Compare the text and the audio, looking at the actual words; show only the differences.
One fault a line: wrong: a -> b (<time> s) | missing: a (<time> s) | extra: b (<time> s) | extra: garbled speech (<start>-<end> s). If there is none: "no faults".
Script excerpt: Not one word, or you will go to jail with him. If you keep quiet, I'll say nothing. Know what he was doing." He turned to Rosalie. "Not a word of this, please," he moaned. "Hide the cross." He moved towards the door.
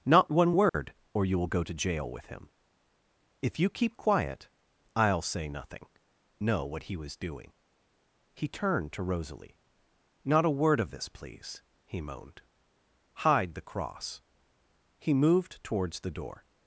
no faults